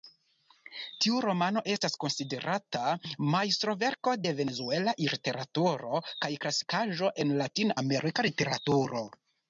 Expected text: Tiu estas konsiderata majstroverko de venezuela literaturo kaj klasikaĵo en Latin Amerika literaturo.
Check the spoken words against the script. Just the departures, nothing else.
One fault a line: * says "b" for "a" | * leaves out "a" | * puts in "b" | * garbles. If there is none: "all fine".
* puts in "romano"